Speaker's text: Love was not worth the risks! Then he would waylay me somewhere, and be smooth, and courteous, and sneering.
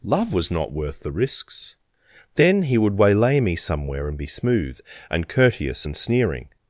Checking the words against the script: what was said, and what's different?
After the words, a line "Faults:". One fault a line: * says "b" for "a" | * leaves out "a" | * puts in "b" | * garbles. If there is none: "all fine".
Love was not worth the risks! Then he would waylay me somewhere, and be smooth, and courteous, and sneering.
Faults:
all fine